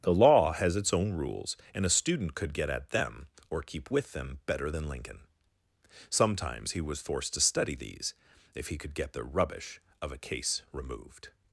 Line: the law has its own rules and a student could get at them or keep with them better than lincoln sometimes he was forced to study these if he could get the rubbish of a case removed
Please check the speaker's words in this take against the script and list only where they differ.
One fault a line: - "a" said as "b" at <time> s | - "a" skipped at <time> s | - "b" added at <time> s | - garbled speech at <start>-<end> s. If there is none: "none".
none